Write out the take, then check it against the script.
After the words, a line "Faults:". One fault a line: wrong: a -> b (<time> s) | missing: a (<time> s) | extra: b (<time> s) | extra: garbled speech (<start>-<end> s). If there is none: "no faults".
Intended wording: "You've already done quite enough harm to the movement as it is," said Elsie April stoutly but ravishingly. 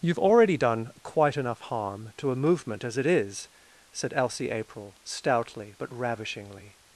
"You've already done quite enough harm to a movement as it is," said Elsie April stoutly but ravishingly.
Faults:
wrong: the -> a (2.3 s)